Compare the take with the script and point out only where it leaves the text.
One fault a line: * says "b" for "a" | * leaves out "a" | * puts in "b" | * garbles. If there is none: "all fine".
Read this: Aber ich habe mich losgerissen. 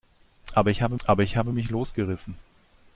* puts in "aber ich habe"